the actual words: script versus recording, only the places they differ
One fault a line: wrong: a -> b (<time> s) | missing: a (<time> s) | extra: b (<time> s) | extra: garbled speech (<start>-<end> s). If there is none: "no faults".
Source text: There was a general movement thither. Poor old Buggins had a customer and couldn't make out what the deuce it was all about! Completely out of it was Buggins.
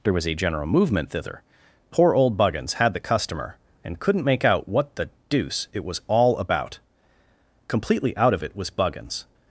wrong: a -> the (2.9 s)